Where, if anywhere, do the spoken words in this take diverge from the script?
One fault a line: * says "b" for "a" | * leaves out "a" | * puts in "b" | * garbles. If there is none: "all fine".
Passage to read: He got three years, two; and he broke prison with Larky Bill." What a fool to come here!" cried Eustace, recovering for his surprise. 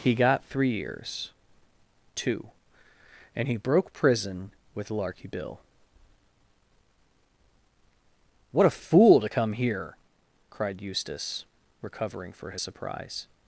all fine